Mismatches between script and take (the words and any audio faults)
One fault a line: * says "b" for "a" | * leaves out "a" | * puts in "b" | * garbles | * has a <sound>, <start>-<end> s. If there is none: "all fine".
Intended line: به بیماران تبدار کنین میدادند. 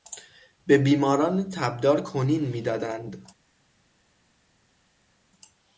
all fine